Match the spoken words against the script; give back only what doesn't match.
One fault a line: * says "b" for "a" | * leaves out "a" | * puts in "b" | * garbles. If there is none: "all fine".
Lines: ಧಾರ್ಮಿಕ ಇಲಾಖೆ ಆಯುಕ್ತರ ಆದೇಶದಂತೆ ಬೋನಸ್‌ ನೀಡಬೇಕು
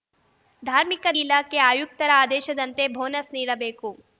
all fine